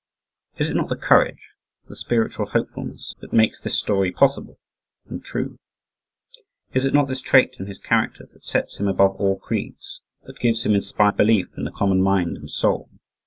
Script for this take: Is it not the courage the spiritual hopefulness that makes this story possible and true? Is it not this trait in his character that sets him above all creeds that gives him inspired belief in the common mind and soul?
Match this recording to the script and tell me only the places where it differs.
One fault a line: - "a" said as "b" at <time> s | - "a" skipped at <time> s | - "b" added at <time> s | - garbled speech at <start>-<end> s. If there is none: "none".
none